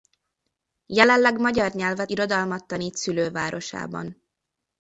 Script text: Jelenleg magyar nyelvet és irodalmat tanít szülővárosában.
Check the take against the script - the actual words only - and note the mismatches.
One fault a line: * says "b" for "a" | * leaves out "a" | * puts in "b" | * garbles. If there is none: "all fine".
* leaves out "és"